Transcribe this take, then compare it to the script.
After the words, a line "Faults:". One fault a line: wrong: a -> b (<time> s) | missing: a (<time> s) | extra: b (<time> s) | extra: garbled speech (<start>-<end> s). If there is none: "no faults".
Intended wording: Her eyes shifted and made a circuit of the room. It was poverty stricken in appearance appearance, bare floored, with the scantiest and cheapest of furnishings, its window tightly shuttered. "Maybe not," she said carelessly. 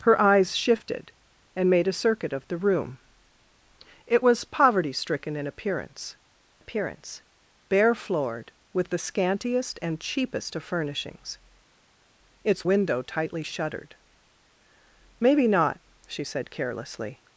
Her eyes shifted and made a circuit of the room. It was poverty stricken in appearance appearance, bare floored, with the scantiest and cheapest of furnishings, its window tightly shuttered. "Maybe not," she said carelessly.
Faults:
no faults